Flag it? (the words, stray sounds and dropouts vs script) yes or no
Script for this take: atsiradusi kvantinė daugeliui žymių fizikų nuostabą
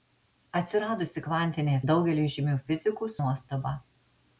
no